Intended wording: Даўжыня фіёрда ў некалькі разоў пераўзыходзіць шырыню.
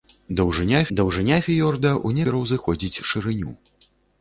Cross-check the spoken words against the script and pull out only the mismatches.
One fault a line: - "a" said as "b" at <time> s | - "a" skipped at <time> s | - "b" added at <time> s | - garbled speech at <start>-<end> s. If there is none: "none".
- "даўжыня" added at 1.0 s
- "некалькі разоў" skipped at 2.2 s